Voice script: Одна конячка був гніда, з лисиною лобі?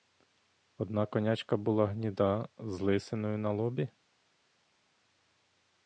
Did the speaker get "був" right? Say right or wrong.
wrong